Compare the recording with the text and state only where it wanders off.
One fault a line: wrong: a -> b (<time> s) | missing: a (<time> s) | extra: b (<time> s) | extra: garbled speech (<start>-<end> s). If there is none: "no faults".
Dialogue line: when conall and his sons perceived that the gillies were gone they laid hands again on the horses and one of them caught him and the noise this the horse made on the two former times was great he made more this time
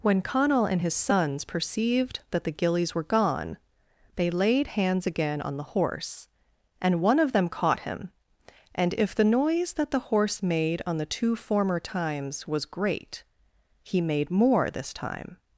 wrong: horses -> horse (5.7 s)
extra: if (8.9 s)
wrong: this -> that (9.7 s)